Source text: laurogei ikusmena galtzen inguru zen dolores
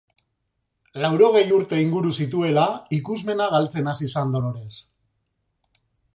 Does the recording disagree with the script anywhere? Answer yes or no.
yes